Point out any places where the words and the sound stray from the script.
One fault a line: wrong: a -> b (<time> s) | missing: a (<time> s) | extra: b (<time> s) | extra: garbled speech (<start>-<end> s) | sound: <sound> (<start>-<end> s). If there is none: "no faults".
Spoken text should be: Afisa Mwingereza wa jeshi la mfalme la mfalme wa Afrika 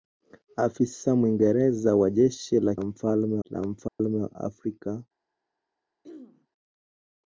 sound: dropout (3.9-4.0 s)
sound: throat clearing (6.0-6.5 s)